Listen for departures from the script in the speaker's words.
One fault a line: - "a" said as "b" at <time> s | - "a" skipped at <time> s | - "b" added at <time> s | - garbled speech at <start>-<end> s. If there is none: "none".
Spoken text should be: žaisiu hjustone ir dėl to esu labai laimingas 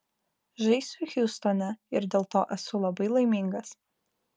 none